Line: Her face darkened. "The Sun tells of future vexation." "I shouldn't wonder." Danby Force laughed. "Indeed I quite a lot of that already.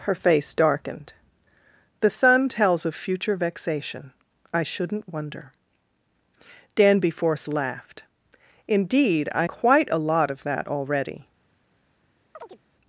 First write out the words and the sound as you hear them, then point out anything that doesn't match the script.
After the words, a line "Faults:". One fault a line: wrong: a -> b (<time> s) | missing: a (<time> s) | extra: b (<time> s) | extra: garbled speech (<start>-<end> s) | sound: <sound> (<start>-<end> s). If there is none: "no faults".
Her face darkened. "The Sun tells of future vexation." "I shouldn't wonder." Danby Force laughed. "Indeed I quite a lot of that already.
Faults:
sound: chirp (12.3-12.6 s)